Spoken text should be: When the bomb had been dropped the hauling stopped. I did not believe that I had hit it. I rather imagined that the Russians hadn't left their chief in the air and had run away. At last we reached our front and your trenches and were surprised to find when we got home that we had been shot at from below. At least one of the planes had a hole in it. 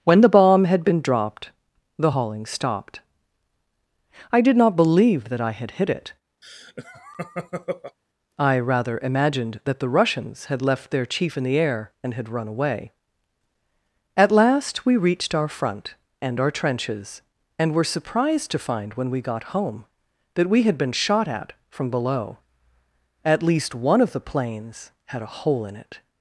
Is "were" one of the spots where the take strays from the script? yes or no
no